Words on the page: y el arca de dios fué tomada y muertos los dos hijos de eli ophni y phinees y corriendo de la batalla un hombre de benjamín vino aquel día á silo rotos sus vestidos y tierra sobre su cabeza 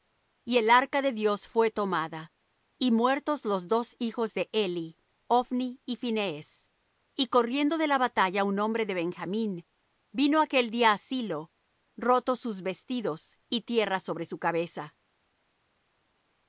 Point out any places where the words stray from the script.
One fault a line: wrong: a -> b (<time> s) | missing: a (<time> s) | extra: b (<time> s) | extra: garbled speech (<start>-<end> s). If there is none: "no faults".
no faults